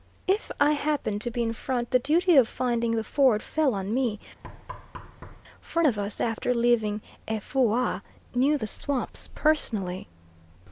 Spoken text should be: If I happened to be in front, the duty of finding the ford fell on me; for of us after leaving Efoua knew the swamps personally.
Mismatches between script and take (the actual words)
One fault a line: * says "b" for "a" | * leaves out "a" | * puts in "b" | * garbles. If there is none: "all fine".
all fine